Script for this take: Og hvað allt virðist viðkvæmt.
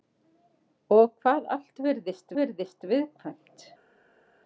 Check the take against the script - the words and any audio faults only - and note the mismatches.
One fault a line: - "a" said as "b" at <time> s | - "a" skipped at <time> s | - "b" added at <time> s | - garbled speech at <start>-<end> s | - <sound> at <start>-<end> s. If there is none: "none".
- "virðist" added at 2.4 s